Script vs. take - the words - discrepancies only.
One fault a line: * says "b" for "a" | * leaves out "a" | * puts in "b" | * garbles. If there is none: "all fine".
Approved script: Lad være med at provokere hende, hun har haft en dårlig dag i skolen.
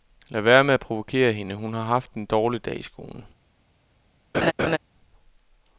all fine